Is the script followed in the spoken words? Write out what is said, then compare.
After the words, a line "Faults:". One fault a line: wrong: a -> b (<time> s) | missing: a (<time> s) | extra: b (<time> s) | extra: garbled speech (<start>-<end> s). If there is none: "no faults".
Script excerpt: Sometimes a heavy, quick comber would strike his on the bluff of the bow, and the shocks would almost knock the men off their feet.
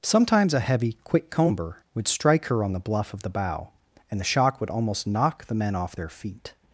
Sometimes a heavy, quick comber would strike her on the bluff of the bow, and the shock would almost knock the men off their feet.
Faults:
wrong: his -> her (2.5 s)
wrong: shocks -> shock (4.2 s)